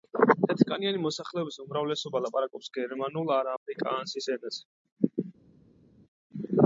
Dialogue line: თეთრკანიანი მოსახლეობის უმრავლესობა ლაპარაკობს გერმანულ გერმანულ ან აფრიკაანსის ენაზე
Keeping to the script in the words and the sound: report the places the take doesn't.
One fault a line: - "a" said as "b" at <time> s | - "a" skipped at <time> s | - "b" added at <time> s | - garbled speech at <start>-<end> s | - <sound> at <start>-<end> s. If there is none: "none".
- "გერმანულ" skipped at 3.3 s